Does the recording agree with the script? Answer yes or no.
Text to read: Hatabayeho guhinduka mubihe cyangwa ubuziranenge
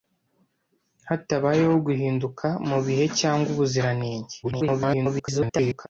no